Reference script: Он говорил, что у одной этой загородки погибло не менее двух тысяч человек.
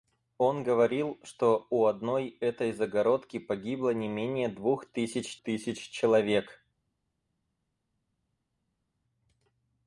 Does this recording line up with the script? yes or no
no